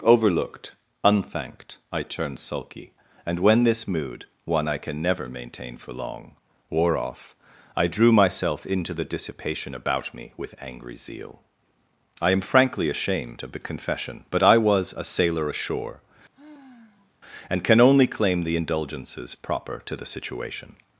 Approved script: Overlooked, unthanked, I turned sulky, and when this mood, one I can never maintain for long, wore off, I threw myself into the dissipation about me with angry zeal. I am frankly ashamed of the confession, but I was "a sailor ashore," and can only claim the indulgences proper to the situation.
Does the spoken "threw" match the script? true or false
false